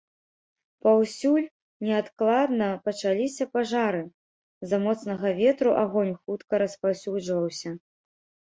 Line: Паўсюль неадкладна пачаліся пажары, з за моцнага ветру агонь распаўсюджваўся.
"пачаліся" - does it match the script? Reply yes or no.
yes